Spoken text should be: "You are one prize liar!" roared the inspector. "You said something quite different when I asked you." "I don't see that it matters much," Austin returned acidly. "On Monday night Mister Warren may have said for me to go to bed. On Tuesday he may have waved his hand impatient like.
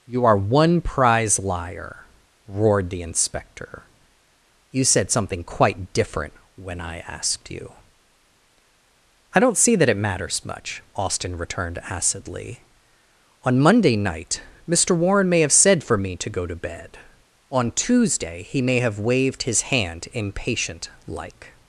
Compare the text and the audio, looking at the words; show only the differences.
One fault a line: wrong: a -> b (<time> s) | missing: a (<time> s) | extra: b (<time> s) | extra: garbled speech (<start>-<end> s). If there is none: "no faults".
no faults